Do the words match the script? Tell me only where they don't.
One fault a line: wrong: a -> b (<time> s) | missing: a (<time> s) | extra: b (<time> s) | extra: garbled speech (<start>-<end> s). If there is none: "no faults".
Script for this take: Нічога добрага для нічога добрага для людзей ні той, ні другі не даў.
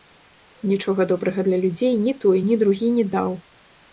missing: нічога добрага для (1.6 s)